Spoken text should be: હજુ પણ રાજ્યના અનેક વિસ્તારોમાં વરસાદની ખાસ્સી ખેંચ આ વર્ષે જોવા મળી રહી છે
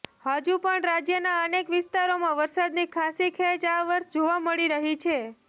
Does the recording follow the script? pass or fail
pass